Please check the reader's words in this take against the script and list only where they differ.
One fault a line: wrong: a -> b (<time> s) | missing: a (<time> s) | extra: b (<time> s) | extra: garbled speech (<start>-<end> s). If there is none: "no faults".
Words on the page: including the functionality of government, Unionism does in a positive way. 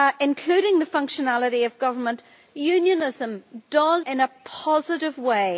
no faults